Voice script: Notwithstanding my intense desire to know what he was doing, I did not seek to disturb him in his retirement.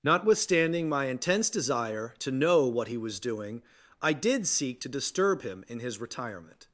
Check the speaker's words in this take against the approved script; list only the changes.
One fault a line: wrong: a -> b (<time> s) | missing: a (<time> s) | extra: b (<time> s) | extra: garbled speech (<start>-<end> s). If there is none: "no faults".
missing: not (4.5 s)